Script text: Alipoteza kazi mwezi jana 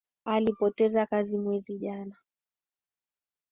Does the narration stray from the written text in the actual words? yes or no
no